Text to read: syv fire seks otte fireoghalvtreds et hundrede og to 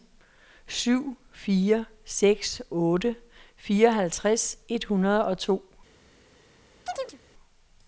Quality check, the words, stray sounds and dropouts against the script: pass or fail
fail